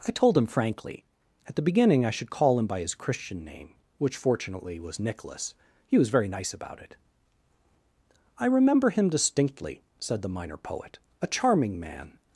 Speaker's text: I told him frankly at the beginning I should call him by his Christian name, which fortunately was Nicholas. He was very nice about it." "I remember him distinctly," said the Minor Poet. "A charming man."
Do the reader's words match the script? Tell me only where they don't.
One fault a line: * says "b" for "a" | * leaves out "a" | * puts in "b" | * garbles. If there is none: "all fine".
all fine